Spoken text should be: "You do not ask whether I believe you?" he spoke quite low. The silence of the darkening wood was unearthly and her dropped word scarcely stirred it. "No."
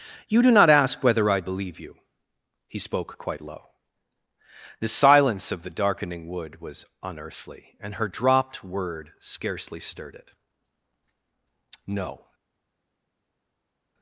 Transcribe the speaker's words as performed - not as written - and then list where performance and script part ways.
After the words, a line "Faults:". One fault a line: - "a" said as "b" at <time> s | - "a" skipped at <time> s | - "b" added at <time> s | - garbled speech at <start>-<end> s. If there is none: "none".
"You do not ask whether I believe you?" he spoke quite low. The silence of the darkening wood was unearthly and her dropped word scarcely stirred it. "No."
Faults:
none